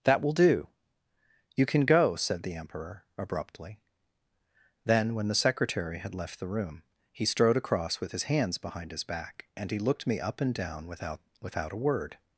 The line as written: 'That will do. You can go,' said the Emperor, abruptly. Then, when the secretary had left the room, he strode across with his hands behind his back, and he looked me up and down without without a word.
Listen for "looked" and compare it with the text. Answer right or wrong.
right